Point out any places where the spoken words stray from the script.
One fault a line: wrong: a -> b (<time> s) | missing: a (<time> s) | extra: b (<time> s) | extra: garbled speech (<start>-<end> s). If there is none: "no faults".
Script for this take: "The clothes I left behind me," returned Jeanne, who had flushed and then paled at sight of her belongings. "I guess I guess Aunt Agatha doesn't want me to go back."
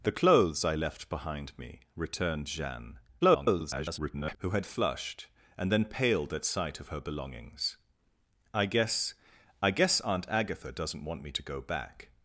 extra: garbled speech (3.2-4.4 s)